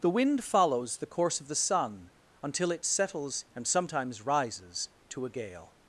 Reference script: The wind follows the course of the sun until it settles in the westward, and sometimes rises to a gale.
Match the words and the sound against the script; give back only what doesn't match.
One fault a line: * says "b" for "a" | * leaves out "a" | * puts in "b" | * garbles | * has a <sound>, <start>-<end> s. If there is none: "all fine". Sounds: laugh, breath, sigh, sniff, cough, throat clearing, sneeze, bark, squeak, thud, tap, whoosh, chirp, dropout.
* leaves out "in the westward"